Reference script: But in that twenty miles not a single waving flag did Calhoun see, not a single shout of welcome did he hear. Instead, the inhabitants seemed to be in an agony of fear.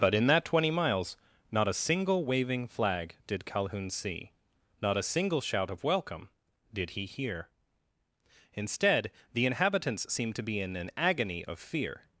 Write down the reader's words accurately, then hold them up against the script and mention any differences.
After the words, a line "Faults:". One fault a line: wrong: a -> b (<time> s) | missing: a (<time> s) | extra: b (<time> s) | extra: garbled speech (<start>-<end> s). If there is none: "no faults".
But in that twenty miles not a single waving flag did Calhoun see, not a single shout of welcome did he hear. Instead, the inhabitants seemed to be in an agony of fear.
Faults:
no faults